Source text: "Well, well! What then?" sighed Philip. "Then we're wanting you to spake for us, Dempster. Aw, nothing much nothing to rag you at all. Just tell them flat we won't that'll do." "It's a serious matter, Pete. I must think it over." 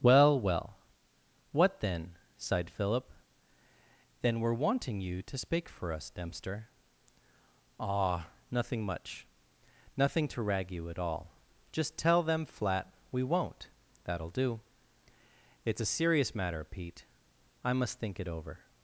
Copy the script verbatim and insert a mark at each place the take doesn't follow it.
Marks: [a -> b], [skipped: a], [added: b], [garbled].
"Well, well! What then?" sighed Philip. "Then we're wanting you to spake for us, Dempster. Aw, nothing much nothing to rag you at all. Just tell them flat we won't that'll do." "It's a serious matter, Pete. I must think it over."